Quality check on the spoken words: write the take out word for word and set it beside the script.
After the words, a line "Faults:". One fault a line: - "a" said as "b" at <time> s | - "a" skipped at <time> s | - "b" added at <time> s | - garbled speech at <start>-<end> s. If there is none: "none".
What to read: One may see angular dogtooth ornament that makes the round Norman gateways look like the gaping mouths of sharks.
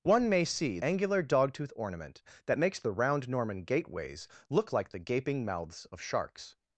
One may see angular dogtooth ornament that makes the round Norman gateways look like the gaping mouths of sharks.
Faults:
none